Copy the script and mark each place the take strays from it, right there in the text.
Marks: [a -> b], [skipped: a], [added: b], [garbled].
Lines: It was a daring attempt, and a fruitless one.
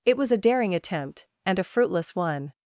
It was a daring attempt, and a fruitless one.